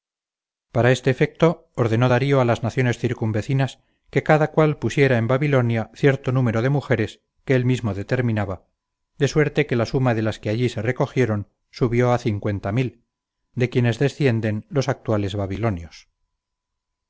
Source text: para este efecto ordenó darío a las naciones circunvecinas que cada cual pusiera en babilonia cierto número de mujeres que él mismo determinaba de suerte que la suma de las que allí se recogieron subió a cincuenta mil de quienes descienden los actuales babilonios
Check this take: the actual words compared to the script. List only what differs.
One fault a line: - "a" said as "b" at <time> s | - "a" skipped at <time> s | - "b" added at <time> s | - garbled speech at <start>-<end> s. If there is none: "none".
none